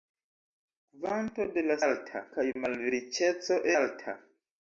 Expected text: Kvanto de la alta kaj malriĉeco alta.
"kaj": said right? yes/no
yes